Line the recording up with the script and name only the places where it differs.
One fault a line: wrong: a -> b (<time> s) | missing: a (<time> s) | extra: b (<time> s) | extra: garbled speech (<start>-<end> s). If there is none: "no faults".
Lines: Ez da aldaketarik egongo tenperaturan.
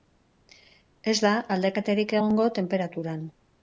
no faults